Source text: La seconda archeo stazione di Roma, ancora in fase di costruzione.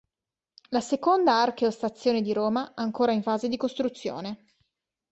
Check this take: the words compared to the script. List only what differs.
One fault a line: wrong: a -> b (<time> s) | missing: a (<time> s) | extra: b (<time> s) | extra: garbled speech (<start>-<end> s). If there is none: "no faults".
no faults